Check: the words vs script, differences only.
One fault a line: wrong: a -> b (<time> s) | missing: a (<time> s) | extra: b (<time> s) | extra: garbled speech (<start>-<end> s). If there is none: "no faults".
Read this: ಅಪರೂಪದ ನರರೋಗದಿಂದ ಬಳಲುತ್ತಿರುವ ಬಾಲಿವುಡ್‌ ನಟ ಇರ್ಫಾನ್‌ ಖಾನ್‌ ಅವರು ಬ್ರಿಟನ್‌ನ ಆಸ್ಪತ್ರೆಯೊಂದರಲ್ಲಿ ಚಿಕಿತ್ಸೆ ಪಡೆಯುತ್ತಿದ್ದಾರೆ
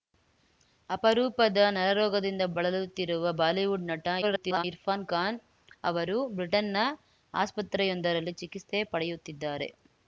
extra: garbled speech (4.2-4.6 s)